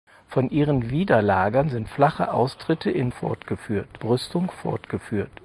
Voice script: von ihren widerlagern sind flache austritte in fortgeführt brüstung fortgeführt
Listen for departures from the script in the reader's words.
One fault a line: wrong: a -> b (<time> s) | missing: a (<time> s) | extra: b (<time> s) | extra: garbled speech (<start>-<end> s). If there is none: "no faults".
no faults